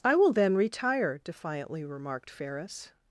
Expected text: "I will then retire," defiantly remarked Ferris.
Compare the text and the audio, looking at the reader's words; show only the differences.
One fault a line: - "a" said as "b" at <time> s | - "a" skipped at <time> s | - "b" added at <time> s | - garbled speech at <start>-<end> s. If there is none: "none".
none